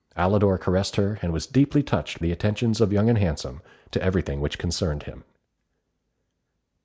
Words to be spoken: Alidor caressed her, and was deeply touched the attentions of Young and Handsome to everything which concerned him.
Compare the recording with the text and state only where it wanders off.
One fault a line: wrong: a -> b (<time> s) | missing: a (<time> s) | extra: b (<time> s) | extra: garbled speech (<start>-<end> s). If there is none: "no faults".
no faults